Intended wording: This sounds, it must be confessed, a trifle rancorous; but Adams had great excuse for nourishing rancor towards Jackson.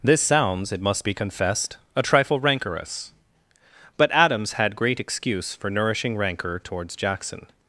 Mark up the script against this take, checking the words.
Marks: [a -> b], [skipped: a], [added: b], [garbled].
This sounds, it must be confessed, a trifle rancorous; but Adams had great excuse for nourishing rancor towards Jackson.